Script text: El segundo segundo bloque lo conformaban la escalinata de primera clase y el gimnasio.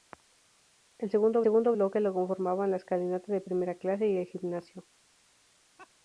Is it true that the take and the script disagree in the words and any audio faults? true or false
true